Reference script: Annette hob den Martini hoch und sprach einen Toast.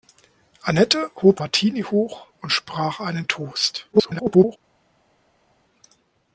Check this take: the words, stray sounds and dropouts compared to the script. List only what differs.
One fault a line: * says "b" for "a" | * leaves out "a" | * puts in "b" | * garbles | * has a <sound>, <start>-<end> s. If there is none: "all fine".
* leaves out "den"
* garbles